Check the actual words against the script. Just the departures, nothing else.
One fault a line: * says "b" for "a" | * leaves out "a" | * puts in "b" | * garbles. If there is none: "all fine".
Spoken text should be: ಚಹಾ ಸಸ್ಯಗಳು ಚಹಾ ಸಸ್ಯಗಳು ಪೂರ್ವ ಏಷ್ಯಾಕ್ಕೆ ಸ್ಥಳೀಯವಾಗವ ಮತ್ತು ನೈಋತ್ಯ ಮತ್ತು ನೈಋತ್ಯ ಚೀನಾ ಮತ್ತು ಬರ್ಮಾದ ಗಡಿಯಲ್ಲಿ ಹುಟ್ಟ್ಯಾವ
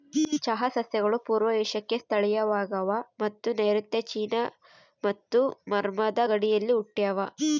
* leaves out "ಚಹಾ ಸಸ್ಯಗಳು"
* leaves out "ಮತ್ತು ನೈಋತ್ಯ"